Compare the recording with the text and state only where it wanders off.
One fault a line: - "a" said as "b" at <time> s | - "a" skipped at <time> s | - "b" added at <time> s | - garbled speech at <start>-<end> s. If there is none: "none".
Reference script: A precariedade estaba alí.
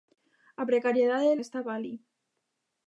none